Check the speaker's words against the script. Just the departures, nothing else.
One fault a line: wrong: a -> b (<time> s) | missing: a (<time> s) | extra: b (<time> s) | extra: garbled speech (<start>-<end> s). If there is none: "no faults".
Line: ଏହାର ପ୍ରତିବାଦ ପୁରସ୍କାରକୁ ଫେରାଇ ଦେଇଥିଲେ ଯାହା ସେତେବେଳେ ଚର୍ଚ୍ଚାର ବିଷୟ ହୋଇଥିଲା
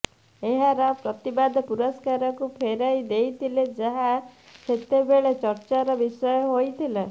no faults